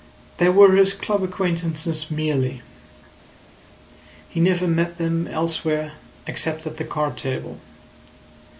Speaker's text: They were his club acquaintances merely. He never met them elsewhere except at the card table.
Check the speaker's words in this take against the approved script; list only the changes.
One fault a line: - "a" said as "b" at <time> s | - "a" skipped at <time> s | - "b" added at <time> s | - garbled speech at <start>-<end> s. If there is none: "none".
none